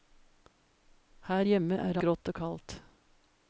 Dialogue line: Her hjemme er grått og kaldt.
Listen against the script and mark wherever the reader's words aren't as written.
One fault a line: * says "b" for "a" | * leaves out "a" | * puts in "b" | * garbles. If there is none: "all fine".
all fine